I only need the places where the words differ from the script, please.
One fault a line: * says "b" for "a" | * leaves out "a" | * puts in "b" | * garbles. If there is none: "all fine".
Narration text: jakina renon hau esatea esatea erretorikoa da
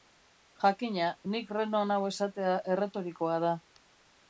* puts in "nik"
* leaves out "esatea"